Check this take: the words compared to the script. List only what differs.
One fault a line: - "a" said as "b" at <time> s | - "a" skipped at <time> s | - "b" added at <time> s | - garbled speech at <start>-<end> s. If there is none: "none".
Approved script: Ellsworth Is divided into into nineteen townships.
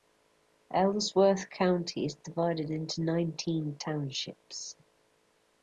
- "County" added at 1.5 s
- "into" skipped at 3.0 s